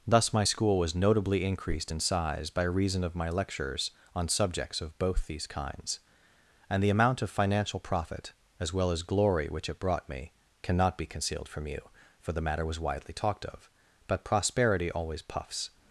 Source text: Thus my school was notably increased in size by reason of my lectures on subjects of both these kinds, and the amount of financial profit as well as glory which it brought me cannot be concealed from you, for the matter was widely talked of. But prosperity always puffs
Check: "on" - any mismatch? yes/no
no